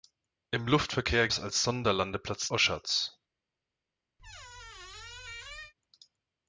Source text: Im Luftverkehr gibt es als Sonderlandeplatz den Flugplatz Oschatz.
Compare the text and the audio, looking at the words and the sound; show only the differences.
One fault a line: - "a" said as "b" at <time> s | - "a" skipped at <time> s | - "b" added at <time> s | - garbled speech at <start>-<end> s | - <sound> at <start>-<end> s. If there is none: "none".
- "gibt" skipped at 1.3 s
- "den Flugplatz" skipped at 2.5 s
- squeak at 4.2-5.7 s